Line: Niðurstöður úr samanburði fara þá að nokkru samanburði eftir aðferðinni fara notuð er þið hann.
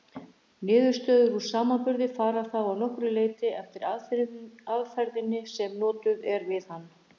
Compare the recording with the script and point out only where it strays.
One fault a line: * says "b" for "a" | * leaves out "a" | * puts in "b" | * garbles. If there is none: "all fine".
* says "leyti" for "samanburði"
* says "sem" for "fara"
* says "við" for "þið"